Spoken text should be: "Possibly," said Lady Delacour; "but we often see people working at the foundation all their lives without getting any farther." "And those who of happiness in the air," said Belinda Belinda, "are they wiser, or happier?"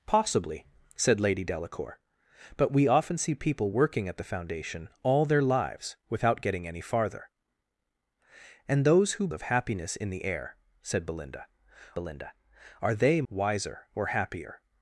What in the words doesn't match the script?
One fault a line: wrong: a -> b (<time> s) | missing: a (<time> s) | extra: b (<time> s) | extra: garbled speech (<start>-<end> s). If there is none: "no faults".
no faults